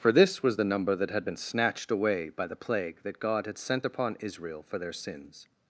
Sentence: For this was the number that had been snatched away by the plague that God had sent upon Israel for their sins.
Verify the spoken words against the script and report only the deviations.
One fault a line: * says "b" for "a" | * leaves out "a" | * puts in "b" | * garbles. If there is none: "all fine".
all fine